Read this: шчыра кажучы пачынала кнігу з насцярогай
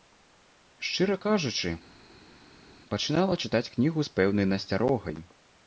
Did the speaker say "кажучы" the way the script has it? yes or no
yes